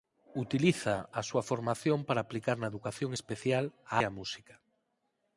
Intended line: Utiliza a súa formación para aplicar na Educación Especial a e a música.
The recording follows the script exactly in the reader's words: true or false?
true